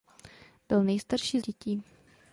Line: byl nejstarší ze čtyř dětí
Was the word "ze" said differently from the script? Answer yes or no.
yes